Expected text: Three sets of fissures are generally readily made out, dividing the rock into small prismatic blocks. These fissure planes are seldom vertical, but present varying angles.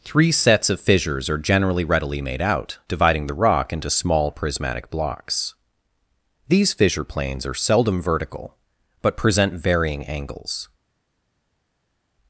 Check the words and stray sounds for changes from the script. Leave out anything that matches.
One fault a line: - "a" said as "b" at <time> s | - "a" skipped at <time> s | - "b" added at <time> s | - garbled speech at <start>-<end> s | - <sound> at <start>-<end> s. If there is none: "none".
none